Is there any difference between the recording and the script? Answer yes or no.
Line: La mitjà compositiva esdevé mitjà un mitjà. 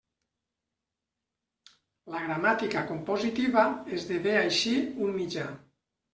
yes